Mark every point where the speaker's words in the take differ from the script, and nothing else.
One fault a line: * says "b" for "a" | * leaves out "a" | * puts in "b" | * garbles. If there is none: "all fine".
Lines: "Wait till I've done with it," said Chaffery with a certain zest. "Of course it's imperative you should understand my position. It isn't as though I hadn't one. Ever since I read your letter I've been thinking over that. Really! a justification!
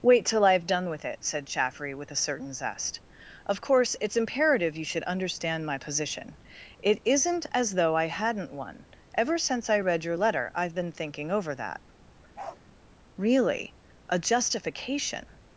all fine